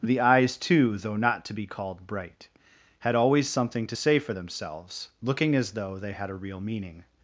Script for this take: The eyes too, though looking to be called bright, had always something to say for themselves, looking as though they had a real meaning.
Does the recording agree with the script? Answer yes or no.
no